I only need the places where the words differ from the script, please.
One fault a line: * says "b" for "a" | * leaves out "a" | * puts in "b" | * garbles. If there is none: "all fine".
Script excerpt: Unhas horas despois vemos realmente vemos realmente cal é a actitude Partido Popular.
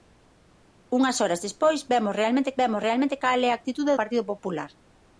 all fine